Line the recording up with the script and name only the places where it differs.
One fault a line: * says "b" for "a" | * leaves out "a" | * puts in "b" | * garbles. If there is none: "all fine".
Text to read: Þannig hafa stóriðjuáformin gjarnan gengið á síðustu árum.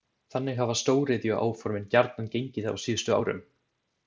all fine